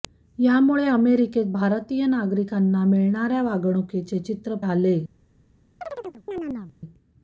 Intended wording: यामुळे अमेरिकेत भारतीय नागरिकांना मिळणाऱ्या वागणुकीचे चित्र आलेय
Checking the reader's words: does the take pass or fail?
pass